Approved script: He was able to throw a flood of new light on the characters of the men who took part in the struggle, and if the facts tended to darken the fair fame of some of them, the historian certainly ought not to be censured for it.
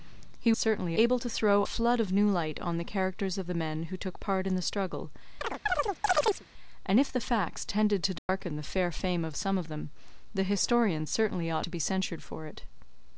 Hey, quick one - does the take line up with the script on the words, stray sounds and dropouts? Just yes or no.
no